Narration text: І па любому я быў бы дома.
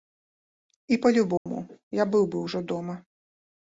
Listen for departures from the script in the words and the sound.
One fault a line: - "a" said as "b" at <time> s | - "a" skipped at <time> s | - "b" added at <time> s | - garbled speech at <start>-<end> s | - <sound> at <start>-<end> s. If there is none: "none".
- dropout at 1.4-1.5 s
- "ўжо" added at 2.5 s